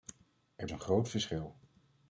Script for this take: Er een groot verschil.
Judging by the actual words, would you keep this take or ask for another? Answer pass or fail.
pass